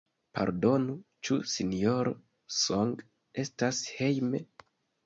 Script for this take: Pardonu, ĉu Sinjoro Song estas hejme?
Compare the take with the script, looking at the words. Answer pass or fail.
pass